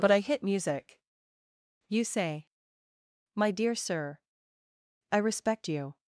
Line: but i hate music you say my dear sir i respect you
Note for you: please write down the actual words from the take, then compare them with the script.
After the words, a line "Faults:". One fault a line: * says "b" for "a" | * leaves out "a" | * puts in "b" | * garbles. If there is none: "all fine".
but i hit music you say my dear sir i respect you
Faults:
* says "hit" for "hate"